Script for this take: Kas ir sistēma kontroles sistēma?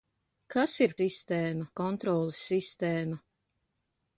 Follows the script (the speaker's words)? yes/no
yes